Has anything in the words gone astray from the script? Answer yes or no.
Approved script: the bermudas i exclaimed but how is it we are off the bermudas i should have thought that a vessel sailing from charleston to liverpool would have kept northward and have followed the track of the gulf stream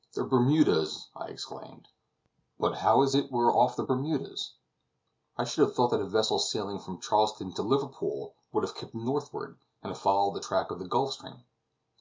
no